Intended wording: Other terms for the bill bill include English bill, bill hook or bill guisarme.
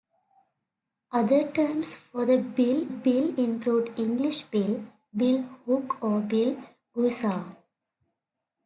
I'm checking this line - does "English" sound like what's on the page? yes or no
yes